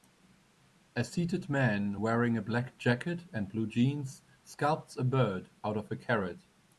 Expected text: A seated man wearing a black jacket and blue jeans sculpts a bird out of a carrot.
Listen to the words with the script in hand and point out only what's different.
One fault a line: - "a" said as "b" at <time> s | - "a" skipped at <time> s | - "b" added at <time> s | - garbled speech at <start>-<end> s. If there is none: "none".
none